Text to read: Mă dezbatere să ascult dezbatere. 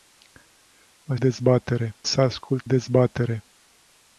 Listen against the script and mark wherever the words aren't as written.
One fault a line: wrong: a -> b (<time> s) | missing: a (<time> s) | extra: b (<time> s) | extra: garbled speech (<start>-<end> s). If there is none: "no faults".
no faults